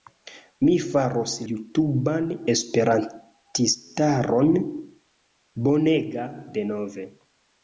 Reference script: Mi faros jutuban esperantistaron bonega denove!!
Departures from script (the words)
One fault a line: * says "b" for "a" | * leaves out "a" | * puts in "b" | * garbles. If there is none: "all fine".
all fine